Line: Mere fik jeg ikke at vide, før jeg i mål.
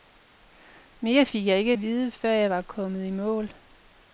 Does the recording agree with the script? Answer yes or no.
no